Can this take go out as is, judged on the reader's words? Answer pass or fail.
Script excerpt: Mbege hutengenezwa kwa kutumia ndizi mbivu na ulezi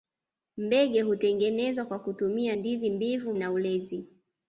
pass